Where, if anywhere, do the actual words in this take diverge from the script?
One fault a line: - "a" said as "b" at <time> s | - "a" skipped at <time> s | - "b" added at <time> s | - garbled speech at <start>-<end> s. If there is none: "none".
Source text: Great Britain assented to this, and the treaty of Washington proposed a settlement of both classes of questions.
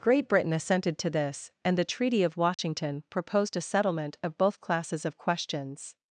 none